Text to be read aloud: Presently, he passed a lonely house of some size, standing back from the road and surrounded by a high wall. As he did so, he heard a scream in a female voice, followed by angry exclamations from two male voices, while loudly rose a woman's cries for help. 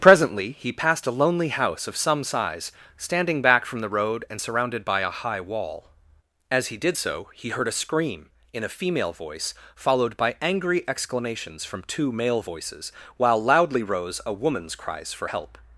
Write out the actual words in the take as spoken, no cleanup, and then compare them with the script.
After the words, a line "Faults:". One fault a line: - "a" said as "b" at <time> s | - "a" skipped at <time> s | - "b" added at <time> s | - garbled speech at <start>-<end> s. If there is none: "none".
Presently, he passed a lonely house of some size, standing back from the road and surrounded by a high wall. As he did so, he heard a scream in a female voice, followed by angry exclamations from two male voices, while loudly rose a woman's cries for help.
Faults:
none